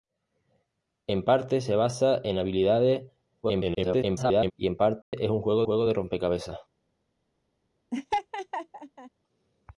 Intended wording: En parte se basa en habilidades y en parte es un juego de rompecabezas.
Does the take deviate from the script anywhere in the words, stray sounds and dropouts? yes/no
yes